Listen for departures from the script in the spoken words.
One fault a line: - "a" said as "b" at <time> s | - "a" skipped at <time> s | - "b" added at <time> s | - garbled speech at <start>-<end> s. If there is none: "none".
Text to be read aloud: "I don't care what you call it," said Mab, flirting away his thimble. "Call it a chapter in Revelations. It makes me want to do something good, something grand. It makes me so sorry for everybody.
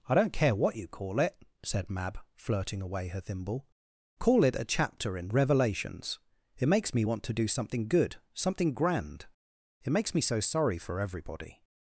- "his" said as "her" at 3.1 s